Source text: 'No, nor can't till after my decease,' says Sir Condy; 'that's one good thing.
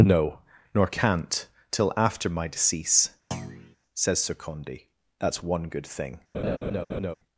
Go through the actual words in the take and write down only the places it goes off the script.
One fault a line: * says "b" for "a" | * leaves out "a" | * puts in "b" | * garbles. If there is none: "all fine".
all fine